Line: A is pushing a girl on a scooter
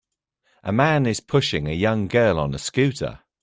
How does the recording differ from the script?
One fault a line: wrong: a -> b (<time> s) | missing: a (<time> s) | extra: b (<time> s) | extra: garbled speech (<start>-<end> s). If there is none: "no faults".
extra: man (0.7 s)
extra: young (1.7 s)